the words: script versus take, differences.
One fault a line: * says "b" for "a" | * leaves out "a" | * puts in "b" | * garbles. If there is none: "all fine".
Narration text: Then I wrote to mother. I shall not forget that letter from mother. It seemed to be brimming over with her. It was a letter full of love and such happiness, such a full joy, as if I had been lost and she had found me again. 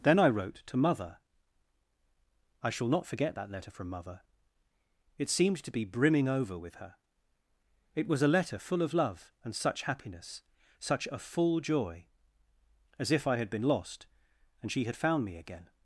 all fine